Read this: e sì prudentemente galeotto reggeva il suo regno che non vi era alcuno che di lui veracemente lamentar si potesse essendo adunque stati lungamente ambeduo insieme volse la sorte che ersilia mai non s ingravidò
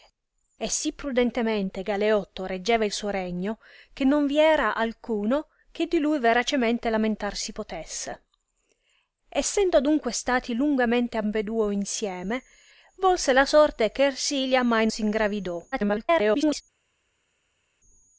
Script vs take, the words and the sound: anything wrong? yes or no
yes